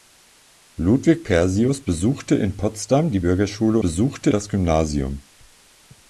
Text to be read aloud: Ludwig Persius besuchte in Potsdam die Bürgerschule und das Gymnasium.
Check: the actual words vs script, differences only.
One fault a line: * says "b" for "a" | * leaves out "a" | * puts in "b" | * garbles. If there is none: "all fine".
* says "besuchte" for "und"